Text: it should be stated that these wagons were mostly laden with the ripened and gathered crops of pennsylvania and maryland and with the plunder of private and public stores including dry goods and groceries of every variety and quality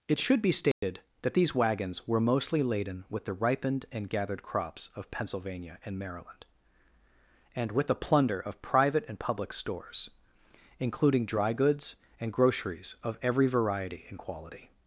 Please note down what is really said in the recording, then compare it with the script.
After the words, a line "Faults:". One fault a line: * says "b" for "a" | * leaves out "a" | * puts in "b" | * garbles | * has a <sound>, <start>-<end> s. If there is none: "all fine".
it should be stated that these wagons were mostly laden with the ripened and gathered crops of pennsylvania and maryland and with the plunder of private and public stores including dry goods and groceries of every variety and quality
Faults:
* has a dropout, 0.7-0.8 s